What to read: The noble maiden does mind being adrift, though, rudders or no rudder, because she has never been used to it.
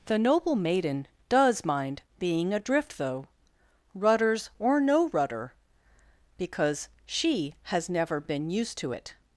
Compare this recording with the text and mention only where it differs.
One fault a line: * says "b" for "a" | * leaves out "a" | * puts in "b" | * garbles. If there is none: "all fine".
all fine